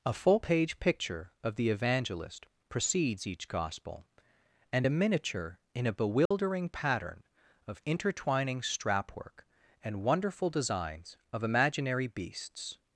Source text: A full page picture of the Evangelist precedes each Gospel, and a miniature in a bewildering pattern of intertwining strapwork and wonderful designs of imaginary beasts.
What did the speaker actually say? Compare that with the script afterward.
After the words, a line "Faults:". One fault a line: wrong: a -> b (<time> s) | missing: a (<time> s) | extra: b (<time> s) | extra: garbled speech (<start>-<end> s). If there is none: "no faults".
A full page picture of the Evangelist precedes each Gospel, and a miniature in a bewildering pattern of intertwining strapwork and wonderful designs of imaginary beasts.
Faults:
no faults